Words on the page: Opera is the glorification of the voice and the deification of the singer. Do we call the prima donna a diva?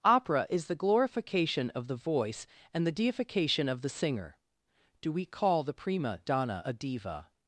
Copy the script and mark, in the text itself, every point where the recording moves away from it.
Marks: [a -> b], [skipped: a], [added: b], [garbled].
Opera is the glorification of the voice and the deification of the singer. Do we call the prima donna a diva?